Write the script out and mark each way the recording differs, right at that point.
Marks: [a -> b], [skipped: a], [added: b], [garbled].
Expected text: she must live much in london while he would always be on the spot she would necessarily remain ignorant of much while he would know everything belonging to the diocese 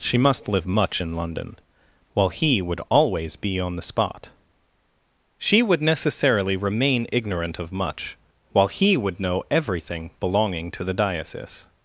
she must live much in london while he would always be on the spot she would necessarily remain ignorant of much while he would know everything belonging to the diocese